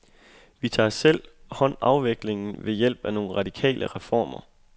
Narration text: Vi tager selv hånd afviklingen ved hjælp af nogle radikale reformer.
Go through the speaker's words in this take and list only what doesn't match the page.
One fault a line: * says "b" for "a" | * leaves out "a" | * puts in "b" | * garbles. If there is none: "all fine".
all fine